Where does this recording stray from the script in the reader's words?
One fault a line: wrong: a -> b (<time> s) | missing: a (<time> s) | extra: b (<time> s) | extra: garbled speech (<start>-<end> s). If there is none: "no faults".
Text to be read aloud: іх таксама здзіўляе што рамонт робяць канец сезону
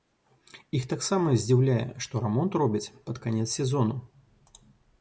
extra: пад (3.1 s)